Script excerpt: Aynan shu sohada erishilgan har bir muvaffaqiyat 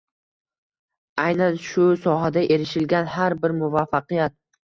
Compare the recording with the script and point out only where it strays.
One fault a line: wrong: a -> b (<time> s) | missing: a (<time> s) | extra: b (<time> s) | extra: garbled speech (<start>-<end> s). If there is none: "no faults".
no faults